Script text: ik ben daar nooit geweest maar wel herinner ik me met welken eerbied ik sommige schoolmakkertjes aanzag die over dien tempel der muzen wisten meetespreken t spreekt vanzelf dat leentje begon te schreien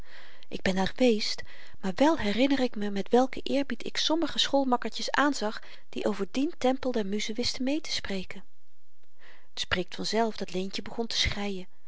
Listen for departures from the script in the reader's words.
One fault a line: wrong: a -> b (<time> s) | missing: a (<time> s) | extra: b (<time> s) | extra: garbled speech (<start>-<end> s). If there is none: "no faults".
missing: nooit (0.9 s)